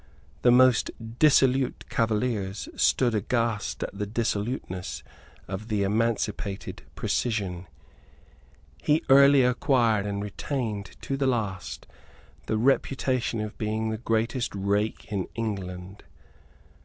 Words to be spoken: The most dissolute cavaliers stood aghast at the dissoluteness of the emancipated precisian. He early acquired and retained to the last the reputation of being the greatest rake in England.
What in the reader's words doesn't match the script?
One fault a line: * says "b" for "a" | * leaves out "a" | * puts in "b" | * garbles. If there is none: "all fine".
all fine